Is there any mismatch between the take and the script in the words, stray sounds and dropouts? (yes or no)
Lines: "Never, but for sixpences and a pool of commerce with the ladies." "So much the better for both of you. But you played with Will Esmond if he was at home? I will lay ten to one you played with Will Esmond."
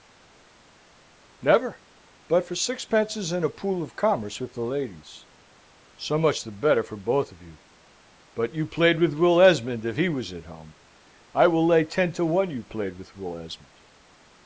no